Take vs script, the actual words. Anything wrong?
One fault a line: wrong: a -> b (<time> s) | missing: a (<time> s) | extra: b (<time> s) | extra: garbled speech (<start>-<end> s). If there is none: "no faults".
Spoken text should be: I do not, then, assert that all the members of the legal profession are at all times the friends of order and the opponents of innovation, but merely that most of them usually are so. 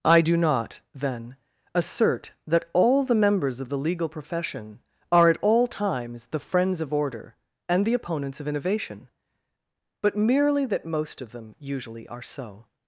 no faults